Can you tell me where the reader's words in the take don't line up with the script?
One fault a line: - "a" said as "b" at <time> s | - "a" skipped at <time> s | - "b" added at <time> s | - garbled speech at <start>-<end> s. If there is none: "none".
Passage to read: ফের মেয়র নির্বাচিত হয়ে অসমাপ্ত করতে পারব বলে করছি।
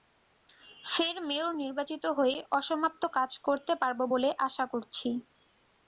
- "কাজ" added at 3.2 s
- "আশা" added at 4.5 s